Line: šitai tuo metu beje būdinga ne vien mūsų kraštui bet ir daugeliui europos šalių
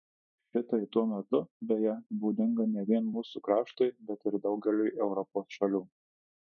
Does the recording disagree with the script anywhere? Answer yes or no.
no